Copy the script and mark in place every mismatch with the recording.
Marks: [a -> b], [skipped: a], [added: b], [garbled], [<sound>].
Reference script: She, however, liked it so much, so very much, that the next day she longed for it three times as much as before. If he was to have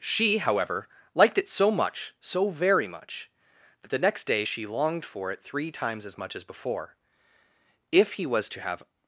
She, however, liked it so much, so very much, that the next day she longed for it three times as much as before. If he was to have